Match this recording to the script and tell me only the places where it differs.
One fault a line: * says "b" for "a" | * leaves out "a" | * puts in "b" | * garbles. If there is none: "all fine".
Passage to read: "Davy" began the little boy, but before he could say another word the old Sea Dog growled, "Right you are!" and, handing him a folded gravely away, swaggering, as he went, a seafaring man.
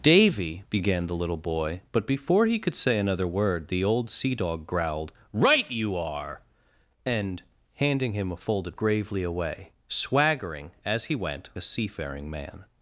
all fine